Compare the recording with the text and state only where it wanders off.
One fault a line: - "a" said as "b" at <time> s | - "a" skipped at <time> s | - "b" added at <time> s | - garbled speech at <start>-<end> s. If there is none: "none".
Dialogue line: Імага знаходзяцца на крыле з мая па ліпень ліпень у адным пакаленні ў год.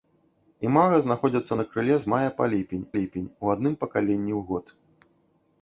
none